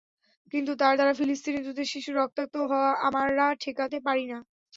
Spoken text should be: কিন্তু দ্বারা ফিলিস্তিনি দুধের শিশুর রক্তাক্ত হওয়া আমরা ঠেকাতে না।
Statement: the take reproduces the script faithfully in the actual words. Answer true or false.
false